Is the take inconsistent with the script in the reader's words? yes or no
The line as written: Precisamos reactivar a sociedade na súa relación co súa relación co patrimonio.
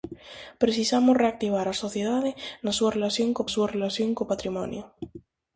no